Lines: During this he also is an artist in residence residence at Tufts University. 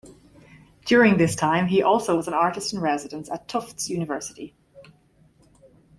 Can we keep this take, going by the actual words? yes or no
no